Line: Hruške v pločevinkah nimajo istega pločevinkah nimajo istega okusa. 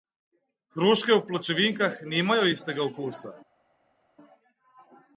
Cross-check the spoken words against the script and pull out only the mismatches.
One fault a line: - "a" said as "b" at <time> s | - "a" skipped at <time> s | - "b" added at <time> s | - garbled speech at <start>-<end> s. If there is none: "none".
- "pločevinkah nimajo istega" skipped at 2.8 s